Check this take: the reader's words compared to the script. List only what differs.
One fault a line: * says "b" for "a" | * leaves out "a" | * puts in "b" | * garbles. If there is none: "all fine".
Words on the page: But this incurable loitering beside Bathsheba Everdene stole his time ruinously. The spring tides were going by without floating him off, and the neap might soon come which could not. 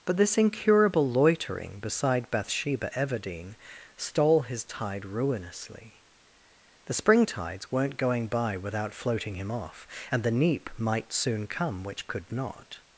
* says "tide" for "time"
* says "weren't" for "were"